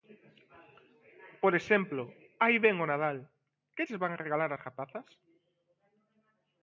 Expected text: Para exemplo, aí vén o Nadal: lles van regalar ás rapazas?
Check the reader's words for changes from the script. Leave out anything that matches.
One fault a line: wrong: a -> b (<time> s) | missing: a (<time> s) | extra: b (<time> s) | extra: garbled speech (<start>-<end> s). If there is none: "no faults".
wrong: Para -> Por (1.4 s)
extra: que (3.8 s)